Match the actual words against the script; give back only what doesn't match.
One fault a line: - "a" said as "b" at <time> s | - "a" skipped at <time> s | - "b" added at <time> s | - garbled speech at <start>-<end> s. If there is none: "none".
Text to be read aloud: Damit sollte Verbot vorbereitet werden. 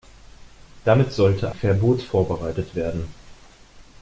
none